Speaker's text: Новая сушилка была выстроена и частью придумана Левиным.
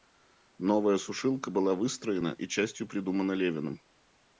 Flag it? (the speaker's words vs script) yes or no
no